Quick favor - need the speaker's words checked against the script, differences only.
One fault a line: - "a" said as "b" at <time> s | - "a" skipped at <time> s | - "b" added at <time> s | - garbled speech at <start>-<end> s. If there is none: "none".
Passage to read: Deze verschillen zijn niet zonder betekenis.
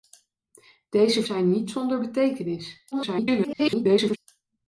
- "verschillen" skipped at 1.2 s
- garbled speech at 2.9-4.2 s